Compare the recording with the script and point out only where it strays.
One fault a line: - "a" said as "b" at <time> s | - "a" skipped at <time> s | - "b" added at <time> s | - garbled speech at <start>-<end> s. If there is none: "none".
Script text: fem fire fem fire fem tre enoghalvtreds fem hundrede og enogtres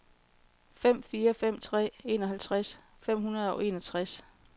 - "fire fem" skipped at 1.6 s